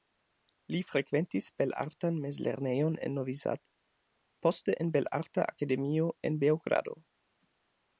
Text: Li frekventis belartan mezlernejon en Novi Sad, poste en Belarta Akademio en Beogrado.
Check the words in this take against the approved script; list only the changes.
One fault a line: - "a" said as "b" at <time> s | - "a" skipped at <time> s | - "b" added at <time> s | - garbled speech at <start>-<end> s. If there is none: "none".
none